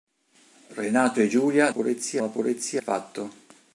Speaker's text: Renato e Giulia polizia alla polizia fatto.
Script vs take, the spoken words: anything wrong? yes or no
no